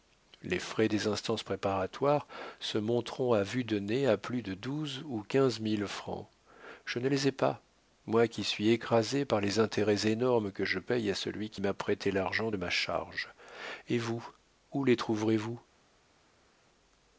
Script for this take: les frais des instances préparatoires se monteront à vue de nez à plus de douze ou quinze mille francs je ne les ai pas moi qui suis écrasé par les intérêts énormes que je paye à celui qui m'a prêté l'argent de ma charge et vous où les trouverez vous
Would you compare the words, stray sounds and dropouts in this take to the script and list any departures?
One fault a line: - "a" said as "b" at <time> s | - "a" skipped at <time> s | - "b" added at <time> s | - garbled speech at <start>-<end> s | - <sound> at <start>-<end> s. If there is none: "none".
none